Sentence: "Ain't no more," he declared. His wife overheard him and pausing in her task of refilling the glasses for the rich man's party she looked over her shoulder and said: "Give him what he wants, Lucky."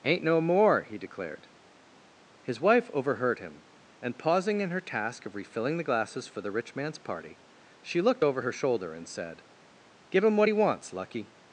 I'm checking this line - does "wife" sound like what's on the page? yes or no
yes